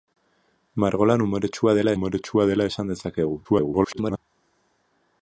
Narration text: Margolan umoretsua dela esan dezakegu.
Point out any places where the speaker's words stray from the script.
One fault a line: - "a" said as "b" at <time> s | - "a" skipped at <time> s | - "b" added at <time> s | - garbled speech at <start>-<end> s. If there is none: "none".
- "umoretsua dela" added at 1.9 s
- garbled speech at 3.4-4.2 s